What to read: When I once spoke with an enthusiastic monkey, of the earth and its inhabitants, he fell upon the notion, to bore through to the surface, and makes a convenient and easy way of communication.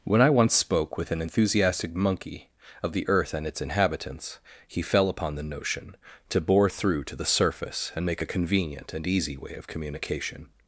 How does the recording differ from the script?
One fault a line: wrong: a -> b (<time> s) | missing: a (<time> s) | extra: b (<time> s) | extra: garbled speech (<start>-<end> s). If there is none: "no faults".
wrong: makes -> make (8.1 s)